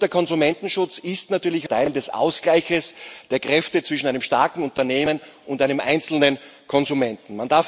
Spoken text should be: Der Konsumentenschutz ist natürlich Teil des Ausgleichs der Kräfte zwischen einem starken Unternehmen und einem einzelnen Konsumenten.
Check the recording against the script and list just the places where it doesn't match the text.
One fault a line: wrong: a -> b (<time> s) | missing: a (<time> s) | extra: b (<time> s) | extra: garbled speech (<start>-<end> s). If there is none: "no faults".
no faults